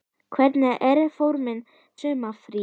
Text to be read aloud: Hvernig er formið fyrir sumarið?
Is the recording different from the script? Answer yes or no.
yes